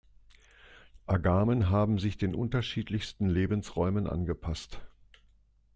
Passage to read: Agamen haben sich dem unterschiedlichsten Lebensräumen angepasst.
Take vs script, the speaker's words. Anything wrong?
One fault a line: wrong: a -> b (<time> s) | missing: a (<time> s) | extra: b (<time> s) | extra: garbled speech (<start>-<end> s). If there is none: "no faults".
wrong: dem -> den (2.2 s)